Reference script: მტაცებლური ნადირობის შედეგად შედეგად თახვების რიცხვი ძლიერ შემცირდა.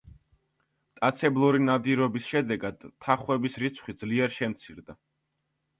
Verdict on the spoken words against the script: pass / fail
fail